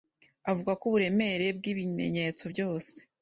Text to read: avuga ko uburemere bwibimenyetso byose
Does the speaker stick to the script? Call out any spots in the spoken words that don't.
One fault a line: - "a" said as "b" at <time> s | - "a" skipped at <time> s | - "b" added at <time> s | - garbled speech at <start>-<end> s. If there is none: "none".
none